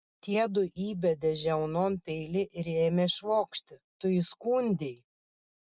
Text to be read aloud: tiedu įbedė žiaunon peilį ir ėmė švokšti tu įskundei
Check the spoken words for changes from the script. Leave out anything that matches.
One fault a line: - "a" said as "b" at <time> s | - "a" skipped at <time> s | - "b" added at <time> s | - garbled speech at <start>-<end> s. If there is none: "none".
none